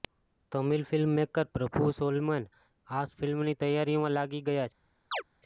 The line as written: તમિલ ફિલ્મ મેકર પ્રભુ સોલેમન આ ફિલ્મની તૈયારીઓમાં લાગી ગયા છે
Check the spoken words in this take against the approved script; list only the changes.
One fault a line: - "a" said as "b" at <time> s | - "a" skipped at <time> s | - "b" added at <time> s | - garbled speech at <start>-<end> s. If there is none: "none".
none